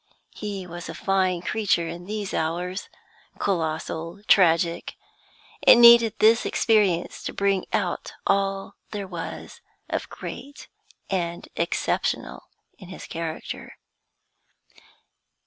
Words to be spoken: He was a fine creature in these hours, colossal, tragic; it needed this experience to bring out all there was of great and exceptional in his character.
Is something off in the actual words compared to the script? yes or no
no